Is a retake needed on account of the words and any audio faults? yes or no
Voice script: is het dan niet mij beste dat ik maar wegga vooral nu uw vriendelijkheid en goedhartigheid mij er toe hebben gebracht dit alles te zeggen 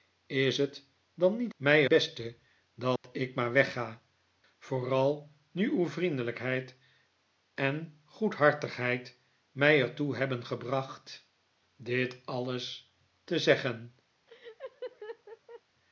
yes